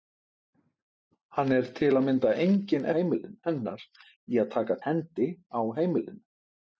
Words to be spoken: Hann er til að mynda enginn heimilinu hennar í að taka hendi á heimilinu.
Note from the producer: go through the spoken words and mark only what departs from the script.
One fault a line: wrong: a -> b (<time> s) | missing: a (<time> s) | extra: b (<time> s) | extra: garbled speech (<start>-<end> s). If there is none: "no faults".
no faults